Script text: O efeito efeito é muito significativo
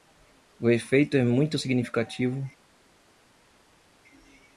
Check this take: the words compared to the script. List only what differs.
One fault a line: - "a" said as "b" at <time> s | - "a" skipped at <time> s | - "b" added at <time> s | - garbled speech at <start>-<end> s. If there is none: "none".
- "efeito" skipped at 1.1 s